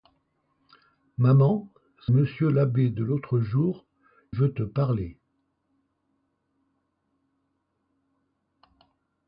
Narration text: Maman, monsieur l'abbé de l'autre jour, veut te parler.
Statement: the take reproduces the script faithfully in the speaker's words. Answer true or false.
true